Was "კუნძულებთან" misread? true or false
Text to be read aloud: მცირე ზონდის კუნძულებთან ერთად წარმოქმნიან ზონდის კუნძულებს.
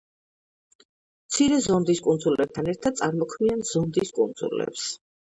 false